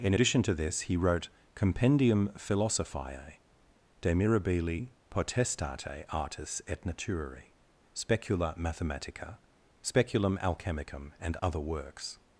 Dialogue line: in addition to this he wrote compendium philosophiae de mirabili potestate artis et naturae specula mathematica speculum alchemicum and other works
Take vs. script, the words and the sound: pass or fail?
fail